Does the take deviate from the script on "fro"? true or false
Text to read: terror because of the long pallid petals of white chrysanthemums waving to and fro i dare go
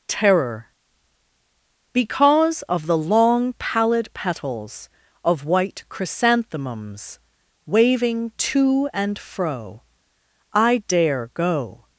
false